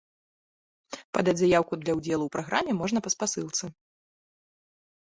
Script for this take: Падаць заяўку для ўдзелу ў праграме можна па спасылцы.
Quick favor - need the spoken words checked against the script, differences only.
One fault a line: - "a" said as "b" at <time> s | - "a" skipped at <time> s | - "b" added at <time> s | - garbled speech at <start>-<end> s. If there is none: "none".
none